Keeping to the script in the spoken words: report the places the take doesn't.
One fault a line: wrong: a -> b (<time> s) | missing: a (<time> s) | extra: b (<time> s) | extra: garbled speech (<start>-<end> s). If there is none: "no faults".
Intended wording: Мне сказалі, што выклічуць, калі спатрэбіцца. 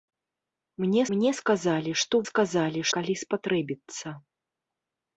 extra: мне (1.1 s)
wrong: выклічуць -> сказалі (2.3 s)